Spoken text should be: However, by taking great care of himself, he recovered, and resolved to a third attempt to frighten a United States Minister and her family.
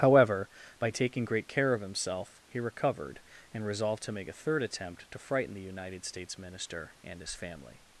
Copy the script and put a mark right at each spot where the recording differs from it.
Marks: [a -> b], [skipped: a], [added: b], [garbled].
However, by taking great care of himself, he recovered, and resolved to [added: make] a third attempt to frighten [a -> the] United States Minister and [her -> his] family.